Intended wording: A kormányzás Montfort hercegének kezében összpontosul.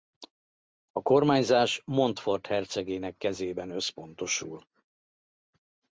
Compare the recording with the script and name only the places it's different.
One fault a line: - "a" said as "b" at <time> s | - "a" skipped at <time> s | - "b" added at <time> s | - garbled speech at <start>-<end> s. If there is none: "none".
none